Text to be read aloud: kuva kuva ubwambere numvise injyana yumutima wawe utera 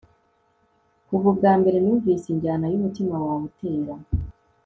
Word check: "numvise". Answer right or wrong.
right